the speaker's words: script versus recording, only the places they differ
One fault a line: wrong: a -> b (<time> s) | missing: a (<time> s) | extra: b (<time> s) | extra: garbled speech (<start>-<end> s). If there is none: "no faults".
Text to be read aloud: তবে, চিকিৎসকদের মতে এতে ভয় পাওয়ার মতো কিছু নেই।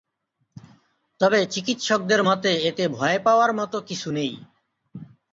no faults